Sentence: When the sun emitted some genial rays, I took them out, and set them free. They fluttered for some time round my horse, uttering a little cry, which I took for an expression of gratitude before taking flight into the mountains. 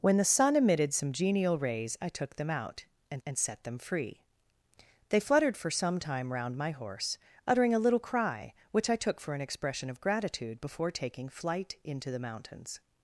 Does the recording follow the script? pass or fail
fail